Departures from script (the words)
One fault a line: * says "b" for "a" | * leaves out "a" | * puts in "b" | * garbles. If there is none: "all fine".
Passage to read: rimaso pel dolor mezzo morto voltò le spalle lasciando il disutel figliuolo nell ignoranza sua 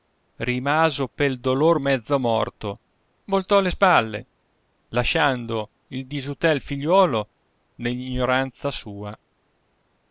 all fine